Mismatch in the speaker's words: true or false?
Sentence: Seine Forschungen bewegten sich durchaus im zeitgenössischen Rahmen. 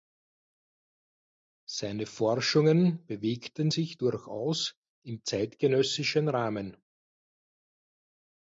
false